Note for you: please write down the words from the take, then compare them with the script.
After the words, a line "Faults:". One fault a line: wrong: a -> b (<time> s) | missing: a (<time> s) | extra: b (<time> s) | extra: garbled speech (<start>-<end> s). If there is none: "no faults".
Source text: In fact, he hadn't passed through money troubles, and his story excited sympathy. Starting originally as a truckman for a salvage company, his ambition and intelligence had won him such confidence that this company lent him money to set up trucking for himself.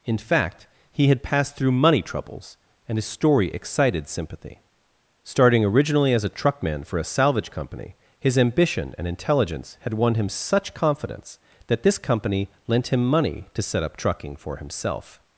In fact, he had passed through money troubles, and his story excited sympathy. Starting originally as a truckman for a salvage company, his ambition and intelligence had won him such confidence that this company lent him money to set up trucking for himself.
Faults:
wrong: hadn't -> had (1.1 s)